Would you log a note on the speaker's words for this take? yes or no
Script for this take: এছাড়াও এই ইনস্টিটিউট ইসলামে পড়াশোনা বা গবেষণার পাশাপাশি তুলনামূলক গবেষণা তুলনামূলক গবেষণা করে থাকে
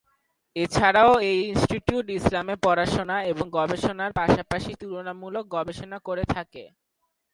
yes